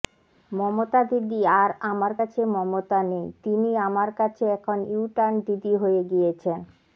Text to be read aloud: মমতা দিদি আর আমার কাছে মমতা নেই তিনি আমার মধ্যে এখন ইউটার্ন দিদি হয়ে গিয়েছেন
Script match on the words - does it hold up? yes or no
no